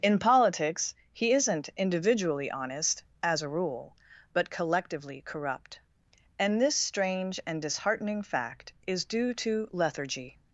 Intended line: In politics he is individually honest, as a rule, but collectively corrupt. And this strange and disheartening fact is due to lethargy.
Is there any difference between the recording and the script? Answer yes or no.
yes